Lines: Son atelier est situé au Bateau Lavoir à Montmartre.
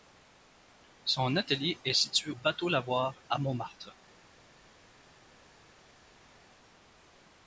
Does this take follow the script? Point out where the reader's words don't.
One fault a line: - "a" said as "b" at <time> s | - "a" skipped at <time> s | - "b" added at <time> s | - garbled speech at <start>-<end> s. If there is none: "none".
- "au" skipped at 2.3 s